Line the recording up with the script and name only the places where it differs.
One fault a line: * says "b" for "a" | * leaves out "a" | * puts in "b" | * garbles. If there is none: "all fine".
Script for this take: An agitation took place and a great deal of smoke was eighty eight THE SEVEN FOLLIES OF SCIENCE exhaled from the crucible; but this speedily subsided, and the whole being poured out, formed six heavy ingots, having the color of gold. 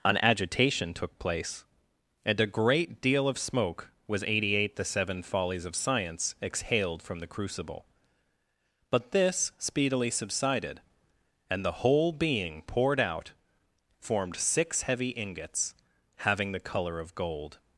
all fine